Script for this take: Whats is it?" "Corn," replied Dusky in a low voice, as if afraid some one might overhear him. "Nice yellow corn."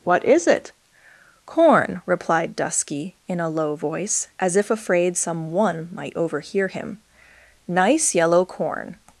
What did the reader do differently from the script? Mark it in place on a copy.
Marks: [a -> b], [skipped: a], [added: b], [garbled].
[Whats -> What] is it?" "Corn," replied Dusky in a low voice, as if afraid some one might overhear him. "Nice yellow corn."